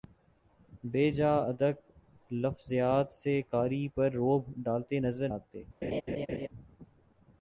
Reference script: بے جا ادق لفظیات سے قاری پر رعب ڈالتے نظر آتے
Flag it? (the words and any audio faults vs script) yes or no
yes